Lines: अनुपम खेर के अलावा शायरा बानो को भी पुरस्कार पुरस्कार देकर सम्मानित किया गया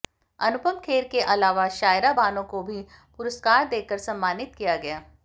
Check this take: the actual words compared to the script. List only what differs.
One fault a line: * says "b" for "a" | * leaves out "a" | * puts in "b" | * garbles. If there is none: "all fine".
* leaves out "पुरस्कार"